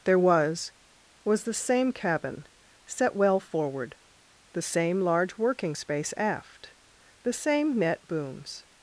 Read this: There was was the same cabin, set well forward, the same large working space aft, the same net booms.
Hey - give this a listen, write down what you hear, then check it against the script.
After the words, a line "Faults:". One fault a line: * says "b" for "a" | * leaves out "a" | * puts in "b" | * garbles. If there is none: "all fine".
There was was the same cabin, set well forward, the same large working space aft, the same net booms.
Faults:
all fine